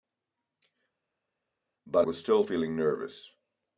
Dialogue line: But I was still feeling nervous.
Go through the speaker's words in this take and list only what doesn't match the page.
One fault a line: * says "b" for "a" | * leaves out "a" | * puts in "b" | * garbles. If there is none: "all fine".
* leaves out "I"